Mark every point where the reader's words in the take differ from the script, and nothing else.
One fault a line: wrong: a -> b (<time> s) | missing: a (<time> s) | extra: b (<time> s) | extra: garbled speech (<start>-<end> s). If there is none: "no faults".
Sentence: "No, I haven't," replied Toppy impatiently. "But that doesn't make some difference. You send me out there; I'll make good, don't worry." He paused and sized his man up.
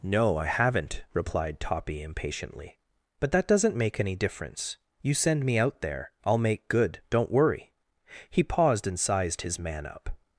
wrong: some -> any (4.0 s)